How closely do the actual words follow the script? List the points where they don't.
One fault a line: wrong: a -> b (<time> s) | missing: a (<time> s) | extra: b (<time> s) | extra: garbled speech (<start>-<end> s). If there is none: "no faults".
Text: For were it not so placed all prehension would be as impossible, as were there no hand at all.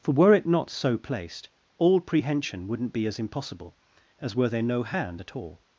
wrong: would -> wouldn't (2.7 s)